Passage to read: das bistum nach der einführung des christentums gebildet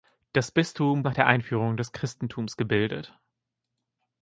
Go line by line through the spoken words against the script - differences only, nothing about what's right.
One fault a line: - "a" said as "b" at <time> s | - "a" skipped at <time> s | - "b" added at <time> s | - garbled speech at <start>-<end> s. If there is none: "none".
none